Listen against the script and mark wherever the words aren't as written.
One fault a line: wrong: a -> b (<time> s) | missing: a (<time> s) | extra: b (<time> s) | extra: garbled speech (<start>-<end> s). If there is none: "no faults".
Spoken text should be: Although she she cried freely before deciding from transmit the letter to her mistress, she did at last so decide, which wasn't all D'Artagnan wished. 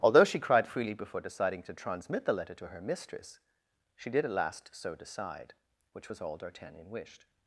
missing: she (0.4 s)
wrong: from -> to (1.6 s)
wrong: wasn't -> was (6.1 s)